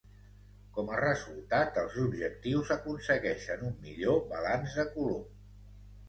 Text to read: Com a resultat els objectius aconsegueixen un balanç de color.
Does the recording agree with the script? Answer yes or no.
no